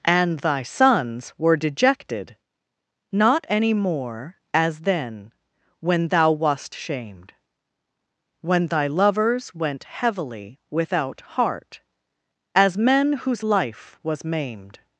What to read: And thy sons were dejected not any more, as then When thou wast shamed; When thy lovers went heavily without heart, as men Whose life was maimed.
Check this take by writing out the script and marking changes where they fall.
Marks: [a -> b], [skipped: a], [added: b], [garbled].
And thy sons were dejected not any more, as then When thou wast shamed; When thy lovers went heavily without heart, as men Whose life was maimed.